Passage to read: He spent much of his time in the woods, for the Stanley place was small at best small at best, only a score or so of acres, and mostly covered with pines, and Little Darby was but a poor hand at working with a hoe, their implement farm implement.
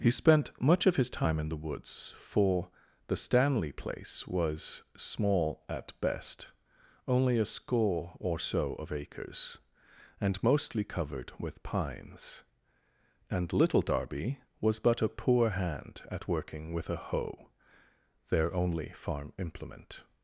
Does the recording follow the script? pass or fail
fail